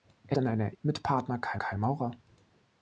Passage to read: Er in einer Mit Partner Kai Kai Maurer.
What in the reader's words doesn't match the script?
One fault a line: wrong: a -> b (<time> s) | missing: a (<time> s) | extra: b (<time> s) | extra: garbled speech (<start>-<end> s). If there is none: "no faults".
no faults